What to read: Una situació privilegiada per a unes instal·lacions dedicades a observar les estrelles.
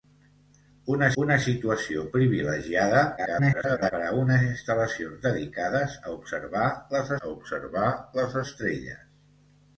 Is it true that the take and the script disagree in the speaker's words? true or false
true